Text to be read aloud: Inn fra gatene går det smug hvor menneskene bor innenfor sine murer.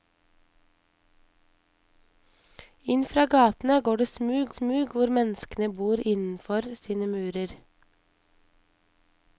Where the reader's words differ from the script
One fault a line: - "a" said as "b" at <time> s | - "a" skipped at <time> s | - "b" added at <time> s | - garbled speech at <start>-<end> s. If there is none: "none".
- "smug" added at 4.5 s